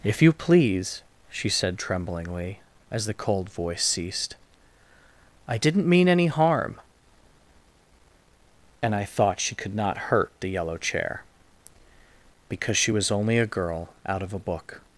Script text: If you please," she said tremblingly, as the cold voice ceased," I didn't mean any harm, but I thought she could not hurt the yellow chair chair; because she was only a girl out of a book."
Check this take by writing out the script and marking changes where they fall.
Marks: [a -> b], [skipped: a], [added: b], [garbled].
If you please," she said tremblingly, as the cold voice ceased," I didn't mean any harm, [but -> and] I thought she could not hurt the yellow chair [skipped: chair;] because she was only a girl out of a book."